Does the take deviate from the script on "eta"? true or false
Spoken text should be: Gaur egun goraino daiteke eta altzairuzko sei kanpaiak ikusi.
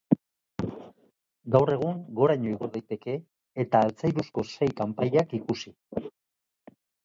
false